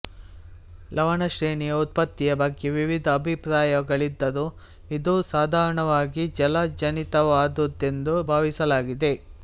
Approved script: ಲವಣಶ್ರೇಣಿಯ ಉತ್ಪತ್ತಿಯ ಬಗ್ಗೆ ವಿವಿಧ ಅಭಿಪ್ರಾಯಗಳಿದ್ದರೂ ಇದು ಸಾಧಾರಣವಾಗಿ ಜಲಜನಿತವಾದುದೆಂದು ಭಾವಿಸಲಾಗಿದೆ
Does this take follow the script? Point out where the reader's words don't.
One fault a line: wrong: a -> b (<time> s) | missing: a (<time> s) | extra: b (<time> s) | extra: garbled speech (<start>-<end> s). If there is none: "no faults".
no faults